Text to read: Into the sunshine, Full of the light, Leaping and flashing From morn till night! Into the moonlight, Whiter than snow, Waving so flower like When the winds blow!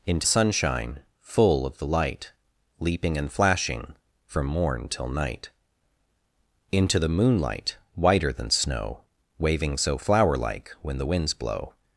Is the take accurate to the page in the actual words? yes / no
no